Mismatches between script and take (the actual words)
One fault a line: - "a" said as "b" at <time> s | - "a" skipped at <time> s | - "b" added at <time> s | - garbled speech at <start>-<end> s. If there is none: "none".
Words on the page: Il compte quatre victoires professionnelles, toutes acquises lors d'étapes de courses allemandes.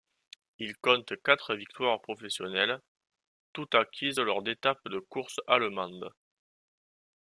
none